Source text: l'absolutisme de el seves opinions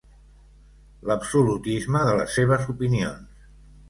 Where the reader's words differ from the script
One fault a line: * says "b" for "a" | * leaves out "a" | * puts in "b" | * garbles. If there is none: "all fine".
* says "les" for "el"